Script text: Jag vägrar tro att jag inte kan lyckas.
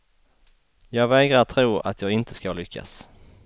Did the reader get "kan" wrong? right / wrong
wrong